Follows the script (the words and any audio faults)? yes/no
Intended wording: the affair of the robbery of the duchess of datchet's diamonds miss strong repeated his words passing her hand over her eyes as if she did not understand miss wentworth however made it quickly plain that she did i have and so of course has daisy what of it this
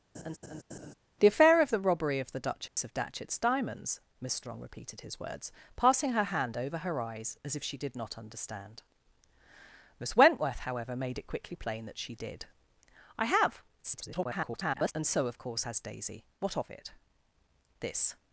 no